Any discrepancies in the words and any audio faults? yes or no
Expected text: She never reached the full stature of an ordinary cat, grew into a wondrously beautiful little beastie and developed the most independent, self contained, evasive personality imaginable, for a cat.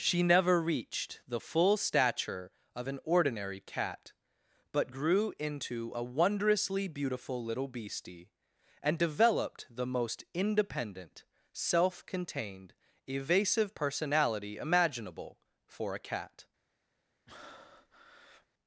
yes